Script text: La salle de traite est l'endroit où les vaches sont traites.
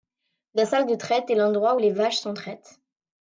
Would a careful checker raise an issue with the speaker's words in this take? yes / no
no